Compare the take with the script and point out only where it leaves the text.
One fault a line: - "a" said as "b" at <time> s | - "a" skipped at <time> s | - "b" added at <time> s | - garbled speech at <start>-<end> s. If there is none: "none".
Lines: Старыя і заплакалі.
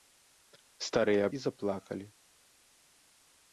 none